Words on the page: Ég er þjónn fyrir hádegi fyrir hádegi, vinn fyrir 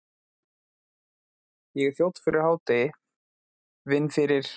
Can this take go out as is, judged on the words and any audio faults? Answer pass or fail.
fail